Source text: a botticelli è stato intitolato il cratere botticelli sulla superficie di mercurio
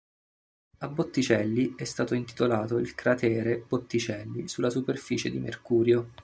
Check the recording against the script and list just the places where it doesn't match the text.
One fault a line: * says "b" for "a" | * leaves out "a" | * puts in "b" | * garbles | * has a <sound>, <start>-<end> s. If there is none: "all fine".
all fine